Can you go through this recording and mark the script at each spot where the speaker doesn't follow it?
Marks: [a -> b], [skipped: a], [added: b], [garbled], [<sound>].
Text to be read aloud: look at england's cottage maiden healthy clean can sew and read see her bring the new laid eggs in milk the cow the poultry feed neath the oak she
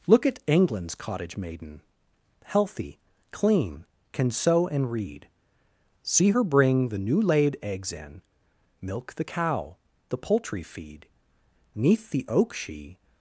look at england's cottage maiden healthy clean can sew and read see her bring the new laid eggs in milk the cow the poultry feed neath the oak she